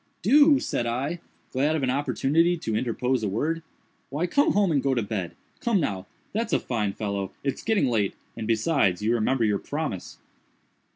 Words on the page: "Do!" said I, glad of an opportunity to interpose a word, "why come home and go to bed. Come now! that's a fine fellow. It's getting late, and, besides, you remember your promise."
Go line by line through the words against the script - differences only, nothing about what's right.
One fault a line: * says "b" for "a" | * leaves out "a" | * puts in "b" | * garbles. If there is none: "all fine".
all fine